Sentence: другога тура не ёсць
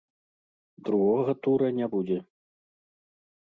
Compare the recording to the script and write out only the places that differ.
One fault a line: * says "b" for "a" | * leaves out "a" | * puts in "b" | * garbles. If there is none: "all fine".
* says "будзе" for "ёсць"